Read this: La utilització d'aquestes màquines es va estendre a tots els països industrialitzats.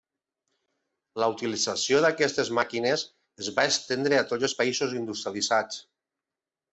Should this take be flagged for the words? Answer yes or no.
no